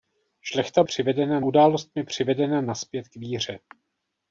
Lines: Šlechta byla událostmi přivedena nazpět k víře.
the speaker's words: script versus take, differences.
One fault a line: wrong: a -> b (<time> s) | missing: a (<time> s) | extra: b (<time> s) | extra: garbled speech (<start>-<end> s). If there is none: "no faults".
wrong: byla -> přivedena (0.8 s)